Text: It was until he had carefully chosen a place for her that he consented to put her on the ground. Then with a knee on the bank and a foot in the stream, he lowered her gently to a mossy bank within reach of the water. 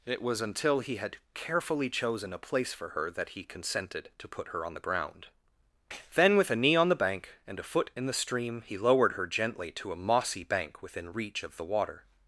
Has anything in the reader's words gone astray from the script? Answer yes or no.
no